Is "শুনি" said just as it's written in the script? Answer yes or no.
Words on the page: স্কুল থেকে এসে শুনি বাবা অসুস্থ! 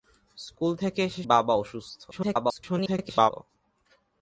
no